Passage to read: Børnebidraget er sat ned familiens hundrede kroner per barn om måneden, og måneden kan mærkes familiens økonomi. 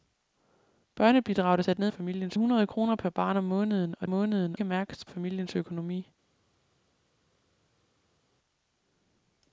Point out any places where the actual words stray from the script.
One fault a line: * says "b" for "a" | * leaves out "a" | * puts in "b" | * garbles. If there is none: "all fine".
all fine